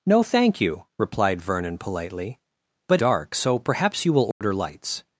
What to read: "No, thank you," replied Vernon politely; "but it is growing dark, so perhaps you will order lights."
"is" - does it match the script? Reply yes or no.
no